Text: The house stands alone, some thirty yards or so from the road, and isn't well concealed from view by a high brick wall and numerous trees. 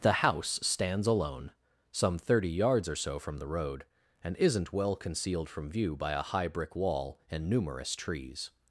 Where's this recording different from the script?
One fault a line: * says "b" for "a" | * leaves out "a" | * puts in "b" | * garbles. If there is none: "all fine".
all fine